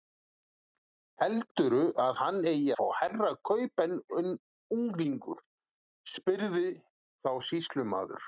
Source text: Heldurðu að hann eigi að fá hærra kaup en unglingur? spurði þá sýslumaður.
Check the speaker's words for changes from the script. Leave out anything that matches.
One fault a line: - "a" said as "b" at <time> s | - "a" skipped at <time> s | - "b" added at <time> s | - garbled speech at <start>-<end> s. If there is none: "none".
- "að" skipped at 2.7 s